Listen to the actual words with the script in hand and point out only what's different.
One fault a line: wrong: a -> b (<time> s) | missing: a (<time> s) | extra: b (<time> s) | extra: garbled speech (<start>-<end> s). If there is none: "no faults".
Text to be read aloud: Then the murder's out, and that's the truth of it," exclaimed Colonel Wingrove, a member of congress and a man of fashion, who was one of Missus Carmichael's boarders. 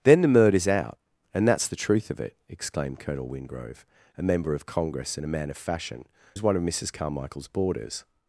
missing: who (6.1 s)